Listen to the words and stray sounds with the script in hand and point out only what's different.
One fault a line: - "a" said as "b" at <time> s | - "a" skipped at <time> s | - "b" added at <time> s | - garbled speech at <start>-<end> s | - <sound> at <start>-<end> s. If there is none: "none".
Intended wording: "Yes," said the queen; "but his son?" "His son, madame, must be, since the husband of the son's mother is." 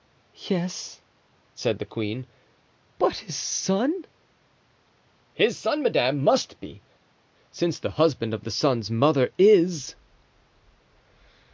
none